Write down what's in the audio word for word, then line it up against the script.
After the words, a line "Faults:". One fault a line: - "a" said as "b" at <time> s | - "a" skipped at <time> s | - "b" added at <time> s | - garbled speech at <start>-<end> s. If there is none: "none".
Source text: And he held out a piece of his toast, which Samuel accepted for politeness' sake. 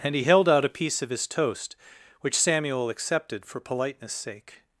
And he held out a piece of his toast, which Samuel accepted for politeness' sake.
Faults:
none